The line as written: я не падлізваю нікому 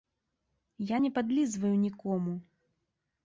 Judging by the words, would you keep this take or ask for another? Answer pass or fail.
pass